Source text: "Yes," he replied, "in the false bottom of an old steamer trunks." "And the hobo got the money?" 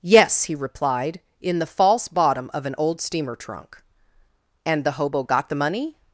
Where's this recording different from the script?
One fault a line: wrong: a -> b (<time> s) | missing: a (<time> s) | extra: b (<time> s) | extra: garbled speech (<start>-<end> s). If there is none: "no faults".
wrong: trunks -> trunk (3.4 s)